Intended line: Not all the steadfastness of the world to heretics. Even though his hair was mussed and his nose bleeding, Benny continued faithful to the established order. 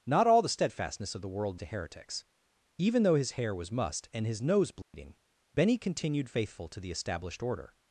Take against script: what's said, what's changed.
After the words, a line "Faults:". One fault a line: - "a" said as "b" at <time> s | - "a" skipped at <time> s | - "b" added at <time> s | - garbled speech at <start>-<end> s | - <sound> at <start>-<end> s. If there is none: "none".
Not all the steadfastness of the world to heretics. Even though his hair was mussed and his nose bleeding, Benny continued faithful to the established order.
Faults:
- dropout at 4.8-4.9 s